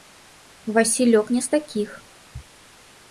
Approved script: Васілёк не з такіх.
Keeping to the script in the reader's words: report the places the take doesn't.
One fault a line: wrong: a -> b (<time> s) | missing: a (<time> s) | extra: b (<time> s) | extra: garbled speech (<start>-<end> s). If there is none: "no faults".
no faults